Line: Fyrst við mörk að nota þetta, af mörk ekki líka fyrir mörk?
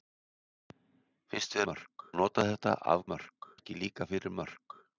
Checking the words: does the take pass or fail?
pass